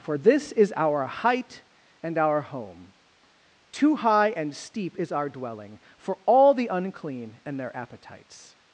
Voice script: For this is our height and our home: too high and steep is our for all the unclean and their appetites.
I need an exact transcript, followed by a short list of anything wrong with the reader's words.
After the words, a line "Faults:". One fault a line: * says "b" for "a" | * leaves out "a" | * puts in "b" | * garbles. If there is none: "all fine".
For this is our height and our home: too high and steep is our dwelling for all the unclean and their appetites.
Faults:
* puts in "dwelling"